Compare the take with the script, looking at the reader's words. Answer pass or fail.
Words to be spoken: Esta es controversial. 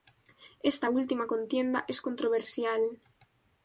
fail